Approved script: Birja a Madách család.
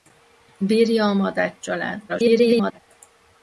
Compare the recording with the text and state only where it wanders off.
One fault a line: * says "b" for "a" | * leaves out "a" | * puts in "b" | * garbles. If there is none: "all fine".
* garbles